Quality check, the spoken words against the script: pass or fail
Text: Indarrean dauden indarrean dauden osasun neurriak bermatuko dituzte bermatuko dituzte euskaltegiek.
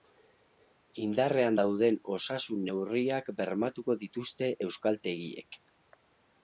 fail